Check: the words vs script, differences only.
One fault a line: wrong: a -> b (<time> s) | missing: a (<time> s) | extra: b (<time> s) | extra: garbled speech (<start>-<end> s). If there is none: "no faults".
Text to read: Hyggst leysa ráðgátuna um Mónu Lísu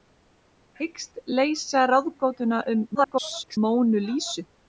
extra: garbled speech (2.9-3.6 s)